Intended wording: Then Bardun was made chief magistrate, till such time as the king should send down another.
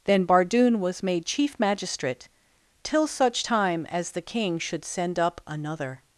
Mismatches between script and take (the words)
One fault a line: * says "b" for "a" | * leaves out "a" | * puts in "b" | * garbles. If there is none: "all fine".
* says "up" for "down"